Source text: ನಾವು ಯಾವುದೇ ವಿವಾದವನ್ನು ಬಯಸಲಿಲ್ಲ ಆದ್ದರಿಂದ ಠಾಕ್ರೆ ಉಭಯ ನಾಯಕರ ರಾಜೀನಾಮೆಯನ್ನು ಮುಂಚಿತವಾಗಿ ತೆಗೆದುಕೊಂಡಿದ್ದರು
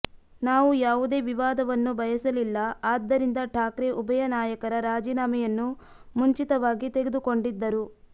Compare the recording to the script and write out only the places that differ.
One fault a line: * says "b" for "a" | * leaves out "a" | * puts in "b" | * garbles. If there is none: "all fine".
all fine